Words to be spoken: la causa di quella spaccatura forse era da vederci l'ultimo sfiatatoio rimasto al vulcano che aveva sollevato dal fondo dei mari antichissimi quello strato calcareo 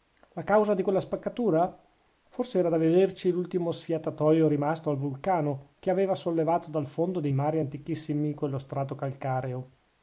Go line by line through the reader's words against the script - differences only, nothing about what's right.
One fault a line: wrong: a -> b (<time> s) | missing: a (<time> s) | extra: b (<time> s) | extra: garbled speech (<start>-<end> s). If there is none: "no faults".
no faults